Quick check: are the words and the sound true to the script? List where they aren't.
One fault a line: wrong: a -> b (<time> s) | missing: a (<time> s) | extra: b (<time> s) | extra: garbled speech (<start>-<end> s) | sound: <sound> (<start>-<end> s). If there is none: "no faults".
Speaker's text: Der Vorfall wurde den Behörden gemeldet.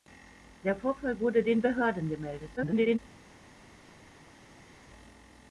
extra: garbled speech (2.6-3.0 s)